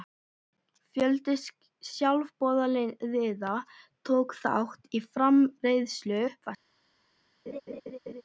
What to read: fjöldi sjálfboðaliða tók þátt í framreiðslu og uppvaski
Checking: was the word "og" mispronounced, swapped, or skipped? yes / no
yes